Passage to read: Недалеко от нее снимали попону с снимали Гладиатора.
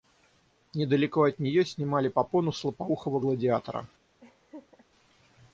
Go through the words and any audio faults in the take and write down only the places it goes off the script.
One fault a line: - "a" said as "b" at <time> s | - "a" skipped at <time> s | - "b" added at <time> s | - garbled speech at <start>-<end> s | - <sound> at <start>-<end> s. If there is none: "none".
- "снимали" said as "лопоухого" at 2.6 s
- laugh at 4.2-4.9 s